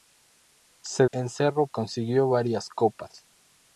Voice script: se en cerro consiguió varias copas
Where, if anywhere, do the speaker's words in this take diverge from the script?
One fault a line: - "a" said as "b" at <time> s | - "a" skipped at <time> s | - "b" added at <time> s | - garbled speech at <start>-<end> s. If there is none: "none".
none